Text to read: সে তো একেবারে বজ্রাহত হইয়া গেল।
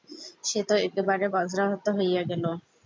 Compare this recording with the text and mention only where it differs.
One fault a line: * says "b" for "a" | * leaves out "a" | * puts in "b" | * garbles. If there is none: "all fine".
all fine